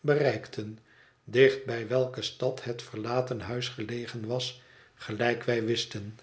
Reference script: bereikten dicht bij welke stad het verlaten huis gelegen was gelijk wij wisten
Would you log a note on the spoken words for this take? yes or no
no